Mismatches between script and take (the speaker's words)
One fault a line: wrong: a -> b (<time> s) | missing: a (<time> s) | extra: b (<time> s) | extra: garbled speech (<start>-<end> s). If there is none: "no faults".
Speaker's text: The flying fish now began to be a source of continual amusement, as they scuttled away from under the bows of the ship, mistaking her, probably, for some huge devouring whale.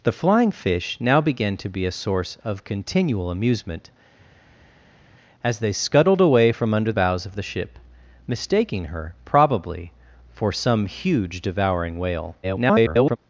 missing: the (6.9 s)
extra: garbled speech (12.4-13.2 s)